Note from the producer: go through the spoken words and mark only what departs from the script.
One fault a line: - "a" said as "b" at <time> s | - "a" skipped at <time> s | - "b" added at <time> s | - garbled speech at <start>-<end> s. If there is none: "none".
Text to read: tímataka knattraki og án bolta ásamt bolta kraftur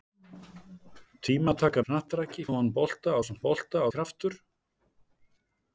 none